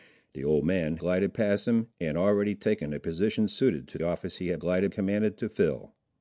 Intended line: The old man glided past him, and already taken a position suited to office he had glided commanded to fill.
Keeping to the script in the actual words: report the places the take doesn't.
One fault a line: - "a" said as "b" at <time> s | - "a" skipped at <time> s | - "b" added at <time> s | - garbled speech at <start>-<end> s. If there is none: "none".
none